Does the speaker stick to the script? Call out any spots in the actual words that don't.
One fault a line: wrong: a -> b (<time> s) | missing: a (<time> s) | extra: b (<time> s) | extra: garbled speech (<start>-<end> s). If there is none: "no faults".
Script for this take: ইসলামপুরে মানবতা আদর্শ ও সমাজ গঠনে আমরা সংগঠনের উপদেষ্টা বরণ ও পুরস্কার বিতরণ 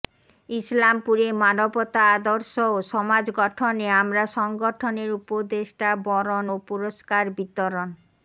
no faults